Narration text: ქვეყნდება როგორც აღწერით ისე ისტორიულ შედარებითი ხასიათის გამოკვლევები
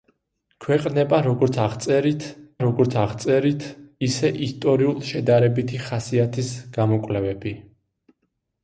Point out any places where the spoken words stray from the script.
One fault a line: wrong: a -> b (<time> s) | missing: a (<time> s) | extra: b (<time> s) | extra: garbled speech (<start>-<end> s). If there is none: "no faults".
extra: როგორც აღწერით (2.6 s)